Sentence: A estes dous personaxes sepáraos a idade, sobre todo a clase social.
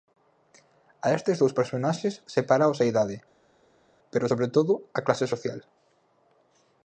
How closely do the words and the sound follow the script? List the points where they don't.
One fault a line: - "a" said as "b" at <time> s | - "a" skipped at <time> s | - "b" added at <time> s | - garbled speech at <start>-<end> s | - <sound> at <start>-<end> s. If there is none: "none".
- "pero" added at 4.1 s